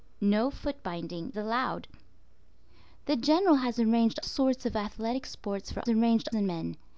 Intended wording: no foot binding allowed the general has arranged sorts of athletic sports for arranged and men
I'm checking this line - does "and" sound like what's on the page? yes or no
yes